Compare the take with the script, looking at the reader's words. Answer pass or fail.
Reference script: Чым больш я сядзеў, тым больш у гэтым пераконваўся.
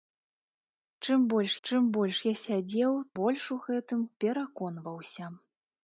fail